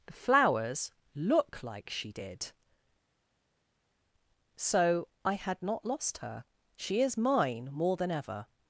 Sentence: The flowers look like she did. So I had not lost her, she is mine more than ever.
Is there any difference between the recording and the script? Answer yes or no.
no